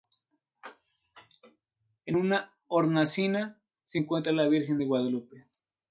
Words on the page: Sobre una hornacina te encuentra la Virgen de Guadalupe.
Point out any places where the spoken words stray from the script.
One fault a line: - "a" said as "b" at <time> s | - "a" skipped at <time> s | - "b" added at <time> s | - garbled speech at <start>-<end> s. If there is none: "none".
- "Sobre" said as "En" at 2.1 s
- "te" said as "se" at 3.8 s